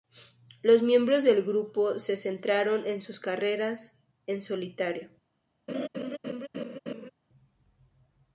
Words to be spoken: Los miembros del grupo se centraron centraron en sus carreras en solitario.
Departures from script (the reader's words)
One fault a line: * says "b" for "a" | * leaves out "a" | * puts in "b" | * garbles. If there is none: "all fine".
* leaves out "centraron"